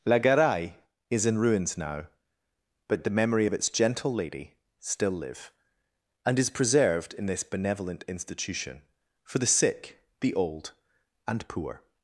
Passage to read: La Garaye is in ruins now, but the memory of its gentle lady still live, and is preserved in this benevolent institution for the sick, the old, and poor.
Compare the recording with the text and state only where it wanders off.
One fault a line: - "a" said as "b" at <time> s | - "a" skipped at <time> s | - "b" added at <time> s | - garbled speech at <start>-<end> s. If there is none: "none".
none